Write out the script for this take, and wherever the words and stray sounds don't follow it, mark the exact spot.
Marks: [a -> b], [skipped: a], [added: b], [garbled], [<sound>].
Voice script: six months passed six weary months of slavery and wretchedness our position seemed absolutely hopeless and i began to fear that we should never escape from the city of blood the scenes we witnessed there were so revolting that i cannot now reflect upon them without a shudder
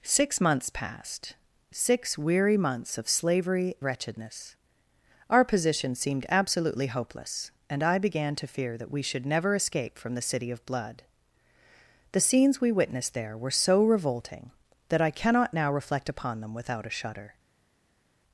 six months passed six weary months of slavery [skipped: and] wretchedness our position seemed absolutely hopeless and i began to fear that we should never escape from the city of blood the scenes we witnessed there were so revolting that i cannot now reflect upon them without a shudder